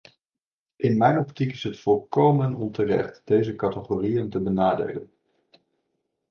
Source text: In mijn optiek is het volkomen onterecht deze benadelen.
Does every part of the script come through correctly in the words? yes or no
no